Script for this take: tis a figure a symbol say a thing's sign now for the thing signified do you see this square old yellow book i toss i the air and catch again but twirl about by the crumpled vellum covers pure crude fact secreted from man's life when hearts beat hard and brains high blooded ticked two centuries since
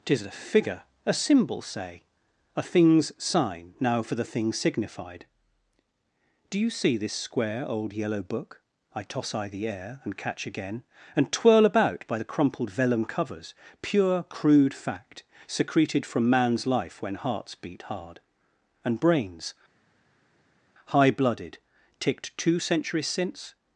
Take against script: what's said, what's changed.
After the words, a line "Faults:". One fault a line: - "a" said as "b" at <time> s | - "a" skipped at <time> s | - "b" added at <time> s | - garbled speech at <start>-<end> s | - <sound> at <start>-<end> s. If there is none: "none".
tis a figure a symbol say a thing's sign now for the thing signified do you see this square old yellow book i toss i the air and catch again and twirl about by the crumpled vellum covers pure crude fact secreted from man's life when hearts beat hard and brains high blooded ticked two centuries since
Faults:
- "but" said as "and" at 11.2 s